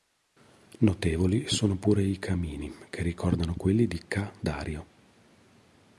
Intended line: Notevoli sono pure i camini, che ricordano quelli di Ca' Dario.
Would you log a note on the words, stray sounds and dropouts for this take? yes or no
no